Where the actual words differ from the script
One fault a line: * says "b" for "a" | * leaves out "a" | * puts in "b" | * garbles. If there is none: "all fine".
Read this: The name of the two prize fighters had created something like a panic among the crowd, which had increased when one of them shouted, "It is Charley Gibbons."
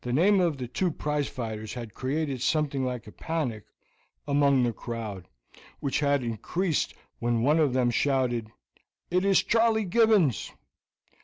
all fine